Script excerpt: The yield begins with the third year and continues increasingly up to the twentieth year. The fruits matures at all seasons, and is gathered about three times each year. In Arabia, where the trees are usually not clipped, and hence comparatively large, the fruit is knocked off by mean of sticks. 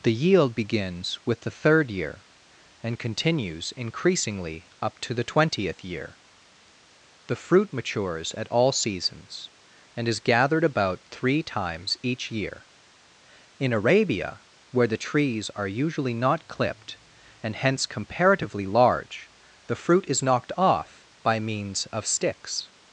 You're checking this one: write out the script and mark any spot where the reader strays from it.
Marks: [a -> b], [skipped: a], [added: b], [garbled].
The yield begins with the third year and continues increasingly up to the twentieth year. The [fruits -> fruit] matures at all seasons, and is gathered about three times each year. In Arabia, where the trees are usually not clipped, and hence comparatively large, the fruit is knocked off by [mean -> means] of sticks.